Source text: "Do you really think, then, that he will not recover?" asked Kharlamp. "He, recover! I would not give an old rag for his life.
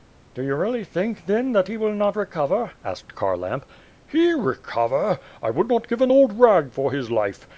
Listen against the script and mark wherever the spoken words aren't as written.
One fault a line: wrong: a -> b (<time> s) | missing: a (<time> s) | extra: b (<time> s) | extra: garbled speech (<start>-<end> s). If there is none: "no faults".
no faults